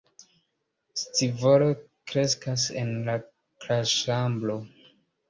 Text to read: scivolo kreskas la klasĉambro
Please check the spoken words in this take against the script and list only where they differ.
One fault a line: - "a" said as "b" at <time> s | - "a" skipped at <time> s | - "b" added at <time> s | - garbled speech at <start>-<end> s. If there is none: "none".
- "en" added at 2.8 s